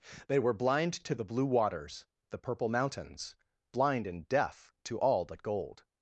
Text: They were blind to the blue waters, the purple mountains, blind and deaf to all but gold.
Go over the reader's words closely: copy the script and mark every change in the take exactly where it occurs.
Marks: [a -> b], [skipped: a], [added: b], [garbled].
They were blind to the blue waters, the purple mountains, blind and deaf to all but gold.